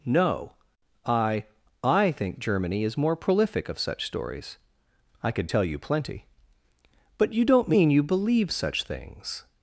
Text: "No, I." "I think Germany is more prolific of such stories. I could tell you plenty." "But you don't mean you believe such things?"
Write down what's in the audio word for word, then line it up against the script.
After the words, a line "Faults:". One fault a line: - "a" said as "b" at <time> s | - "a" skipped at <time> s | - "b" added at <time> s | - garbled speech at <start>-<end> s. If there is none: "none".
"No, I." "I think Germany is more prolific of such stories. I could tell you plenty." "But you don't mean you believe such things?"
Faults:
none